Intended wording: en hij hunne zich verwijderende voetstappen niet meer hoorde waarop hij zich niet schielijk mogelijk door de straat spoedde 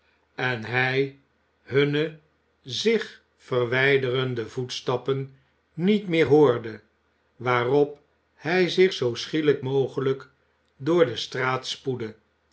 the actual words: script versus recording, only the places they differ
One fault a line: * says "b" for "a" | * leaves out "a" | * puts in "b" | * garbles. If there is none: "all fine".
* says "zoo" for "niet"